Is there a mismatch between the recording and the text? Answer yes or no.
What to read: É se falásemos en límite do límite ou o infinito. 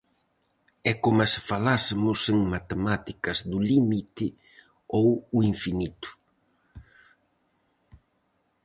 yes